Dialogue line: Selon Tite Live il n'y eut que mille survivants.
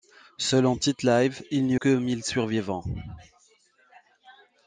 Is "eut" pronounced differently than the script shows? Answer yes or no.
yes